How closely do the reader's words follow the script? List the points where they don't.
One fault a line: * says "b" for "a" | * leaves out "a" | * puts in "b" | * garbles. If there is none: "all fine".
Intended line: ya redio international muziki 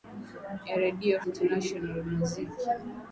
all fine